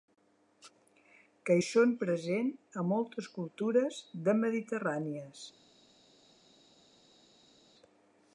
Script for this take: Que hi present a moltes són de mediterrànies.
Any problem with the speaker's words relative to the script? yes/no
yes